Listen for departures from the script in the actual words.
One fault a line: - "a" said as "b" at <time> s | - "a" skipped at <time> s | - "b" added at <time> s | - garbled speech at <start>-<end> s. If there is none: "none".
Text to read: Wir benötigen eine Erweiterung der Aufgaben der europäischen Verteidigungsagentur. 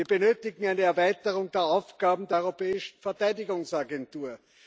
none